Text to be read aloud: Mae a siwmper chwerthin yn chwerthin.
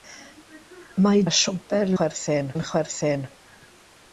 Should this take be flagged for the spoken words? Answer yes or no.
no